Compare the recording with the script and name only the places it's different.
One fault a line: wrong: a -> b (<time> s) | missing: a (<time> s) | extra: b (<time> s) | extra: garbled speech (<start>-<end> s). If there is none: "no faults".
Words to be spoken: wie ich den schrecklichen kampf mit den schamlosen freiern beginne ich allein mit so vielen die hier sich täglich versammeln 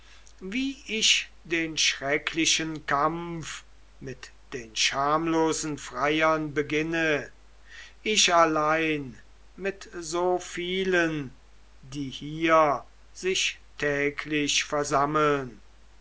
no faults